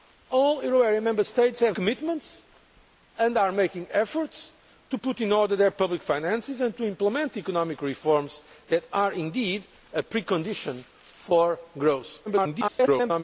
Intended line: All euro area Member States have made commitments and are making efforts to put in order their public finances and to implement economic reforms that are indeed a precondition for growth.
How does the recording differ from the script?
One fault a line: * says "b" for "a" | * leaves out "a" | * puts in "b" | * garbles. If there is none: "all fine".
* leaves out "made"
* garbles